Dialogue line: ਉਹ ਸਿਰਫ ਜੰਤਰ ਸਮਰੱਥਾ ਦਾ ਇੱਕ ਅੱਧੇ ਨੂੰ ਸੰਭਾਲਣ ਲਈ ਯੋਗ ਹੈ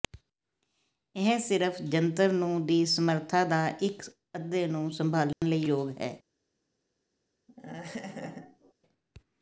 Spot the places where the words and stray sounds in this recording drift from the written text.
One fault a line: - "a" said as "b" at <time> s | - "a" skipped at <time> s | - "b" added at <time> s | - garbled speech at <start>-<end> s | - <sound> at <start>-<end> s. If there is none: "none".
- "ਉਹ" said as "ਇਹ" at 1.1 s
- "ਨੂੰ ਦੀ" added at 2.3 s
- dropout at 5.3-5.4 s
- laugh at 7.5-8.7 s